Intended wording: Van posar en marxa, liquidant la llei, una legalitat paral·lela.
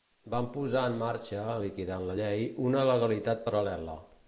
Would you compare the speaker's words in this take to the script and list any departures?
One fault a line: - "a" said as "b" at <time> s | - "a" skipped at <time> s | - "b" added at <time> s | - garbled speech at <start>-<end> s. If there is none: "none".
none